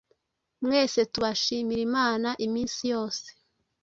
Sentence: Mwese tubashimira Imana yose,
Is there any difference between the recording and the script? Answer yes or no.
yes